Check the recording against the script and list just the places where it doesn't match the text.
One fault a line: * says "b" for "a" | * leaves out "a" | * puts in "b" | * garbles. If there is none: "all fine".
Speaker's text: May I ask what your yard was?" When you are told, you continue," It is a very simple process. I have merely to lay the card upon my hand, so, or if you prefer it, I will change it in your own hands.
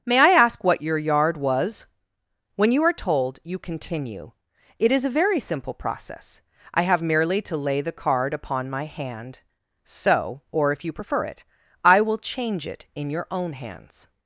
all fine